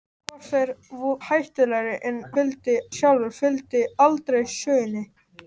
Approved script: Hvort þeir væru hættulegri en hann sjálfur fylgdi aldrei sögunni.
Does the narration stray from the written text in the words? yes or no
yes